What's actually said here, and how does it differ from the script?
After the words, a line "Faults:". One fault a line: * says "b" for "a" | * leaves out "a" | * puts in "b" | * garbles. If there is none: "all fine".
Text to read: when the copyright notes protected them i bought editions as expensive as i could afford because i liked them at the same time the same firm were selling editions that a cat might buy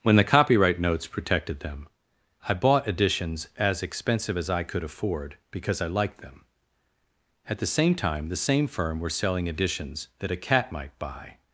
when the copyright notes protected them i bought editions as expensive as i could afford because i liked them at the same time the same firm were selling editions that a cat might buy
Faults:
all fine